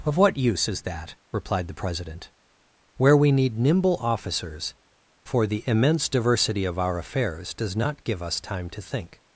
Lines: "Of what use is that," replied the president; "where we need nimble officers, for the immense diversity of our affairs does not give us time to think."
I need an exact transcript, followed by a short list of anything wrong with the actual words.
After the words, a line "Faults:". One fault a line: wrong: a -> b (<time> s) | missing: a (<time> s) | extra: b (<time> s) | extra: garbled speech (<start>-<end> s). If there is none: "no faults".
"Of what use is that," replied the president; "where we need nimble officers, for the immense diversity of our affairs does not give us time to think."
Faults:
no faults